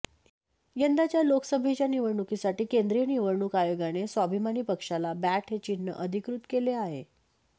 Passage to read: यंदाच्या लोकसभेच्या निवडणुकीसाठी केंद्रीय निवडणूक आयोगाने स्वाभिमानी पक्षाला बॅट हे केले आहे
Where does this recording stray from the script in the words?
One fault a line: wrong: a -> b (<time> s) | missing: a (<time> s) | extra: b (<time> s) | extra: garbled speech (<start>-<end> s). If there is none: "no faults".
extra: चिन्ह अधिकृत (5.6 s)